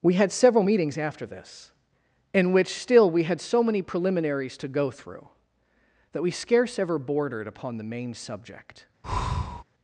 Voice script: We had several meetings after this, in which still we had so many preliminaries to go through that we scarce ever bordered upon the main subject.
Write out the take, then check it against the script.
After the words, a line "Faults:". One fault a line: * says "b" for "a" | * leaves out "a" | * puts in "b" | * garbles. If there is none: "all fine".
We had several meetings after this, in which still we had so many preliminaries to go through that we scarce ever bordered upon the main subject.
Faults:
all fine